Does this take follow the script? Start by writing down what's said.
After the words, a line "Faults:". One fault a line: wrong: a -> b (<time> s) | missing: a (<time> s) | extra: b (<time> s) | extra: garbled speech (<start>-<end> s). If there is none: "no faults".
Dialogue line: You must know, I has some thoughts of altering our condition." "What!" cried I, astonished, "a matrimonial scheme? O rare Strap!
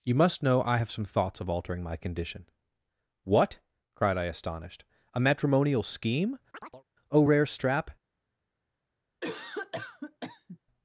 You must know, I have some thoughts of altering my condition." "What!" cried I, astonished, "a matrimonial scheme? O rare Strap!
Faults:
wrong: has -> have (0.7 s)
wrong: our -> my (1.8 s)